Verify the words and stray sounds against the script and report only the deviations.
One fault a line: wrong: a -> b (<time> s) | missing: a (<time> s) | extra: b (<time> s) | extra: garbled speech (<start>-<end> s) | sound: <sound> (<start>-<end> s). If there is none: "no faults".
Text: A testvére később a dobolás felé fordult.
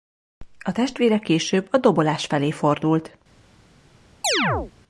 sound: chirp (4.2-4.7 s)